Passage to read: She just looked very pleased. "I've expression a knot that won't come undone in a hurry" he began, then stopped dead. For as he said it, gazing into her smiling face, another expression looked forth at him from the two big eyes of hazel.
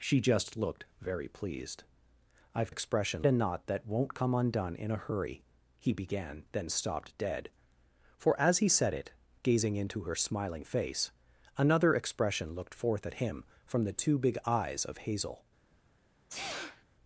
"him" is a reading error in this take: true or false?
false